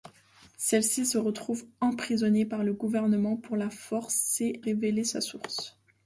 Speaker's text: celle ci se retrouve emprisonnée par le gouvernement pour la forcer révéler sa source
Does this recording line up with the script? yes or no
yes